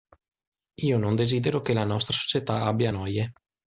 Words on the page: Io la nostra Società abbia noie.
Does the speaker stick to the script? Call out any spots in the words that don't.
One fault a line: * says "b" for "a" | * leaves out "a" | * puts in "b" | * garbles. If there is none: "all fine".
* puts in "non desidero che"